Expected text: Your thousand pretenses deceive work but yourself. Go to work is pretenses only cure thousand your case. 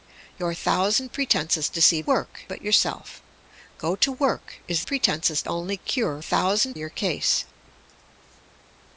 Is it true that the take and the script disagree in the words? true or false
false